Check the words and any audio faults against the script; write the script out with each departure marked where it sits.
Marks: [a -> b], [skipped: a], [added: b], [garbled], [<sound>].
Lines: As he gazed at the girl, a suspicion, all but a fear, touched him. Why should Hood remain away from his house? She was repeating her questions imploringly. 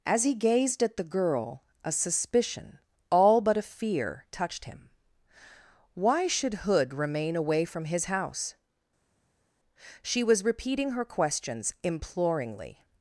As he gazed at the girl, a suspicion, all but a fear, touched him. Why should Hood remain away from his house? She was repeating her questions imploringly.